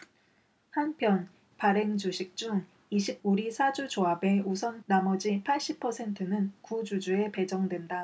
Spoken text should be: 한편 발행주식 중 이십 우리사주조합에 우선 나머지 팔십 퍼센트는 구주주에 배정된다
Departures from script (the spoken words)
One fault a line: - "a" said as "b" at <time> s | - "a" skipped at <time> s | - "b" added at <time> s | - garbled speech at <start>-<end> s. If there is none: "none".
none